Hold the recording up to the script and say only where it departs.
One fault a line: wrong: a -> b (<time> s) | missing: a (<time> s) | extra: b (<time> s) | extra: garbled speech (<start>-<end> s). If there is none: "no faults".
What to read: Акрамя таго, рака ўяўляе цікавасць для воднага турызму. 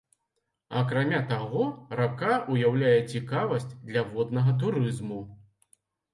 no faults